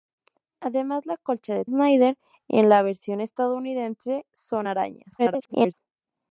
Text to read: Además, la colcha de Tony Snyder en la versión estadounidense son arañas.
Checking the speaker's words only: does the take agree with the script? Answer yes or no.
no